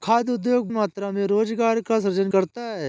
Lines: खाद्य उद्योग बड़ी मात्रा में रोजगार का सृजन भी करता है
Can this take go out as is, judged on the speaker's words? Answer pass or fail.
fail